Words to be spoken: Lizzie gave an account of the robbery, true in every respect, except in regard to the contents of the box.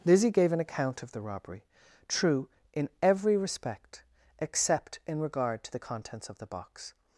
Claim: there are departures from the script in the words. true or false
false